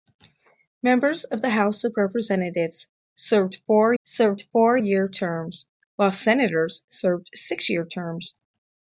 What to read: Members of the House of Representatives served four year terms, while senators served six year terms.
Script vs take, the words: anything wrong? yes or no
yes